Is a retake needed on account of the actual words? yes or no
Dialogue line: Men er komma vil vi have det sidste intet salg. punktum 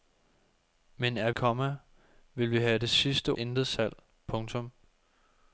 no